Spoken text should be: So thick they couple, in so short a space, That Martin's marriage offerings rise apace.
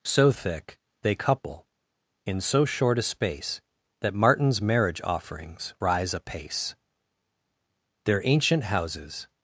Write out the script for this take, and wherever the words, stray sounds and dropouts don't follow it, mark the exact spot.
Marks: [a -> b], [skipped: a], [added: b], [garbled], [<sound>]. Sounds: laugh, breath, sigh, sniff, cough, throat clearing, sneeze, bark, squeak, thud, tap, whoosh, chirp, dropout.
So thick they couple, in so short a space, That Martin's marriage offerings rise apace. [added: Their ancient houses]